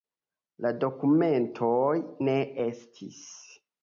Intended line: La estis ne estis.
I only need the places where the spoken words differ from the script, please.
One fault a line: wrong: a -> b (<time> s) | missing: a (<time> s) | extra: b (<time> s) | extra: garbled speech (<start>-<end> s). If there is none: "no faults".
wrong: estis -> dokumentoj (0.8 s)